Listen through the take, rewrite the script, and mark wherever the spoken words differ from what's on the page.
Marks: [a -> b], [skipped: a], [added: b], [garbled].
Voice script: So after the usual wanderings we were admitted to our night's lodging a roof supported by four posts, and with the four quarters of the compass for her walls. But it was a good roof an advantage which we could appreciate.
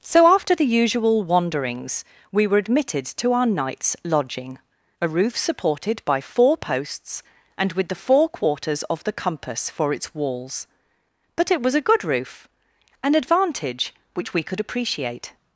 So after the usual wanderings we were admitted to our night's lodging a roof supported by four posts, and with the four quarters of the compass for [her -> its] walls. But it was a good roof an advantage which we could appreciate.